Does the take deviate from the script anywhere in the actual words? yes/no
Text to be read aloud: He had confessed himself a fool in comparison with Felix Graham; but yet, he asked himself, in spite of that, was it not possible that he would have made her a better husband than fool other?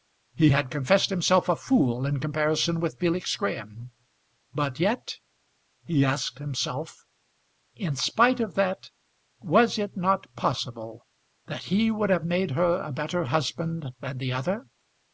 yes